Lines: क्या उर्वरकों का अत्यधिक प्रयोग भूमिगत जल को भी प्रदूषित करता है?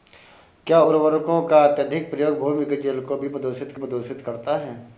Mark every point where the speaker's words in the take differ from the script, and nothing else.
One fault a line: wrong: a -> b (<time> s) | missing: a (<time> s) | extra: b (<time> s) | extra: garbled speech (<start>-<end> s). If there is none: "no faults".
extra: प्रदूषित (3.7 s)